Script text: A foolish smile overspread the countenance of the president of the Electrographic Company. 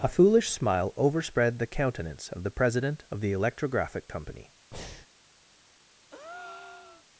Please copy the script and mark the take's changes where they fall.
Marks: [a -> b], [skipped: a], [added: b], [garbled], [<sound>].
A foolish smile overspread the countenance of the president of the Electrographic Company. [breath] [breath]